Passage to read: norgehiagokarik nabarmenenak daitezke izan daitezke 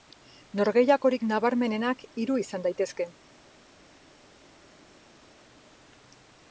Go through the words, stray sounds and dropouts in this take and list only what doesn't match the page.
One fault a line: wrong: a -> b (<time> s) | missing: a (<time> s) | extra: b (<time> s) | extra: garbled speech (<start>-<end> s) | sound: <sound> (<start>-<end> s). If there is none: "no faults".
wrong: daitezke -> hiru (2.2 s)